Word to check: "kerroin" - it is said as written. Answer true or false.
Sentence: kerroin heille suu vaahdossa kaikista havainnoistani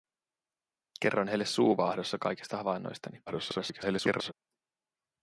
true